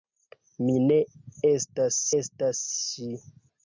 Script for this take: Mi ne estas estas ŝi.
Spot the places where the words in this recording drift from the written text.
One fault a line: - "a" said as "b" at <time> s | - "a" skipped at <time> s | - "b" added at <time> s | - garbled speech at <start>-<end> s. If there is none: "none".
none